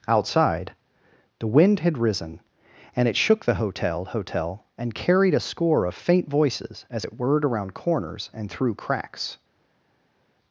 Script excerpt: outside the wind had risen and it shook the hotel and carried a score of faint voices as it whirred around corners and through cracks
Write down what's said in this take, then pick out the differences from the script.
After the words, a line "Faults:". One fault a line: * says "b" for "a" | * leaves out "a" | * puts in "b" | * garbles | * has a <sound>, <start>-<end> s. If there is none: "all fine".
outside the wind had risen and it shook the hotel hotel and carried a score of faint voices as it whirred around corners and through cracks
Faults:
* puts in "hotel"